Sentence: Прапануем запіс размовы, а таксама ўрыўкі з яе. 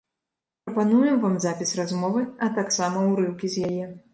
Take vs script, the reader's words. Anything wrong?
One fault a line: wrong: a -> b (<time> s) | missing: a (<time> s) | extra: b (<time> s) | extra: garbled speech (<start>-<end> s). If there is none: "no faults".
extra: вам (1.2 s)